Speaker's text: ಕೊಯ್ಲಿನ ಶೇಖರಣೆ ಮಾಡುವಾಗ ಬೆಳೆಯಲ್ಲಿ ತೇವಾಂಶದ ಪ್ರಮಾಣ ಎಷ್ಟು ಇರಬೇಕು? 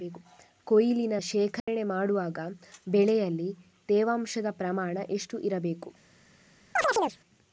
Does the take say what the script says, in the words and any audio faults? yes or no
no